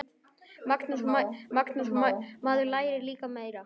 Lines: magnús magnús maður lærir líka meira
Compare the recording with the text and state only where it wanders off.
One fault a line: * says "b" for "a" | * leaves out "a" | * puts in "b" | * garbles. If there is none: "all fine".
all fine